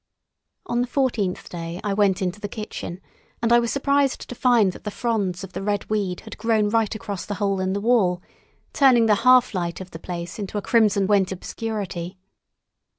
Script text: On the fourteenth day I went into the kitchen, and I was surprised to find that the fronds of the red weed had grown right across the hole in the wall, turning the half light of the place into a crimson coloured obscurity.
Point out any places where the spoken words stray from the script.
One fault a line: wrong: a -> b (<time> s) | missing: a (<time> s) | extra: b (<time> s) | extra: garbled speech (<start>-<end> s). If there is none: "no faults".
wrong: coloured -> went (11.0 s)